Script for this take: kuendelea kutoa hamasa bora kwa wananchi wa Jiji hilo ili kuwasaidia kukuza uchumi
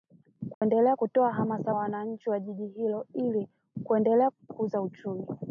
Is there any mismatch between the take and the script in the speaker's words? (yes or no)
yes